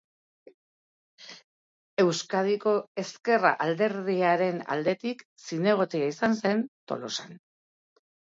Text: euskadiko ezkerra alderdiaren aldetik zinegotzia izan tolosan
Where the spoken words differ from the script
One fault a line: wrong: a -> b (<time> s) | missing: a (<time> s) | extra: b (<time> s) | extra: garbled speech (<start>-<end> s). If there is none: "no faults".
extra: zen (6.4 s)